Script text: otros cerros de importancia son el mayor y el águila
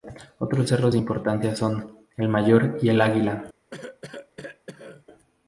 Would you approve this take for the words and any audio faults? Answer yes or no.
no